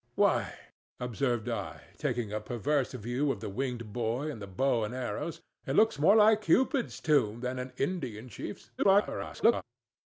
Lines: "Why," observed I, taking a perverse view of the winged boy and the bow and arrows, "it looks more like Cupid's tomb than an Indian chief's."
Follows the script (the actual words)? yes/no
no